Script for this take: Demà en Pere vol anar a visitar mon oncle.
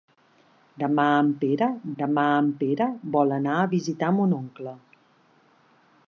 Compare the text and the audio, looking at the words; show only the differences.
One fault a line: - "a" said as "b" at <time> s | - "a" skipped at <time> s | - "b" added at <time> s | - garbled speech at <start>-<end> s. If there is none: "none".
- "demà en Pere" added at 2.0 s